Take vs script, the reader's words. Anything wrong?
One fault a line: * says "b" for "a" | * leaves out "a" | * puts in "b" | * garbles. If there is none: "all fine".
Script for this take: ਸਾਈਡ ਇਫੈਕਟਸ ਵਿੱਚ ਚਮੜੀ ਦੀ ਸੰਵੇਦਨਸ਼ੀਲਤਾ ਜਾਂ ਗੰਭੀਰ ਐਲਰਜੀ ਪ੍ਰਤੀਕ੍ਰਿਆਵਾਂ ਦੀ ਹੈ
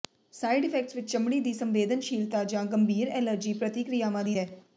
all fine